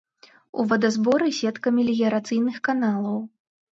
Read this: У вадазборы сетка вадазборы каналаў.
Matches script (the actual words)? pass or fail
fail